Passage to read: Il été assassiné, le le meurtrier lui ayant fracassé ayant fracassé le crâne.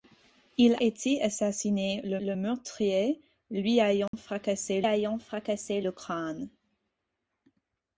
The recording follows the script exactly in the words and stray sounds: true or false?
false